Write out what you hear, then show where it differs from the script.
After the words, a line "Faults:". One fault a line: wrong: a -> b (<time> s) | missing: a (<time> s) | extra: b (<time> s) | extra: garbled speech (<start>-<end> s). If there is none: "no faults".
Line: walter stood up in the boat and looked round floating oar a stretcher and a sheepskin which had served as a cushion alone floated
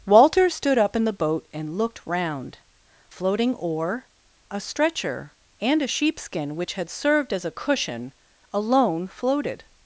walter stood up in the boat and looked round floating oar a stretcher and a sheepskin which had served as a cushion alone floated
Faults:
no faults